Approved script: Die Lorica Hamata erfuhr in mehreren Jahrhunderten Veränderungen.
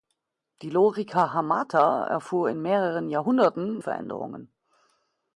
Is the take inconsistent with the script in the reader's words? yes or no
no